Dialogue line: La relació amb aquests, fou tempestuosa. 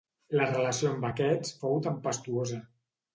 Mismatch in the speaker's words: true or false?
false